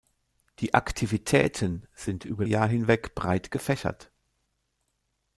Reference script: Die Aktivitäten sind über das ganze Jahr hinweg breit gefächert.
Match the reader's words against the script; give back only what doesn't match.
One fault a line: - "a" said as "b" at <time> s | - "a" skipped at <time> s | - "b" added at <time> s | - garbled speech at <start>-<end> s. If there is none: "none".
- "das ganze" skipped at 2.5 s